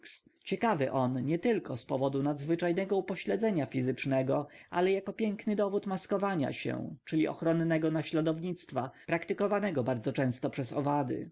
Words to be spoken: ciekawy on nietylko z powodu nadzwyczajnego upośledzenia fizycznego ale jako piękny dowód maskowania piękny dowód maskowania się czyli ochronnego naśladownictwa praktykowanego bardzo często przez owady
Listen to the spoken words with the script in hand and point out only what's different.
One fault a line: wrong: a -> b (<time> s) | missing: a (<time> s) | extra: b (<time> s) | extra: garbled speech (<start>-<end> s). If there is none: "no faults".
missing: piękny dowód maskowania (6.5 s)